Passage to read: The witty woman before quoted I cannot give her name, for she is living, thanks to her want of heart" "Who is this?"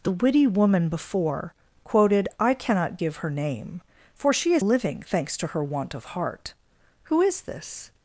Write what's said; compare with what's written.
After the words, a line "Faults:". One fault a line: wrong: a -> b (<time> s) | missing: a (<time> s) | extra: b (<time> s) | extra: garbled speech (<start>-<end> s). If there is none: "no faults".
The witty woman before quoted I cannot give her name, for she is living, thanks to her want of heart" "Who is this?"
Faults:
no faults